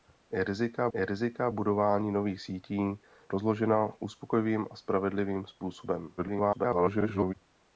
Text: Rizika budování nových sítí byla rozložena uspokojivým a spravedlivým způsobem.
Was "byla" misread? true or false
true